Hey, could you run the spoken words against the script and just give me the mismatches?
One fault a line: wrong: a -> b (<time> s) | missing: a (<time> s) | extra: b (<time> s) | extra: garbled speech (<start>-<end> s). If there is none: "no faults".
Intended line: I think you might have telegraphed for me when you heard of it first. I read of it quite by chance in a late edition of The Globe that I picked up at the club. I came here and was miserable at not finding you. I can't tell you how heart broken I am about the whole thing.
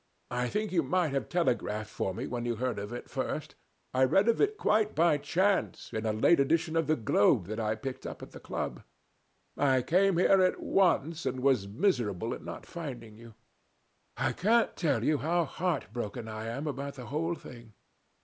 extra: at once (10.4 s)